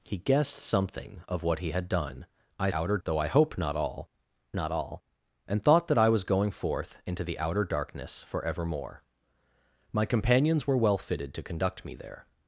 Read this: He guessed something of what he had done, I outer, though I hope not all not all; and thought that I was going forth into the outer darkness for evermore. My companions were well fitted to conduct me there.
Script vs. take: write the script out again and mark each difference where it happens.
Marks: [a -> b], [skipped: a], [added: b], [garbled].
He guessed something of what he had done, I outer, though I hope not all not all; and thought that I was going forth into the outer darkness for evermore. My companions were well fitted to conduct me there.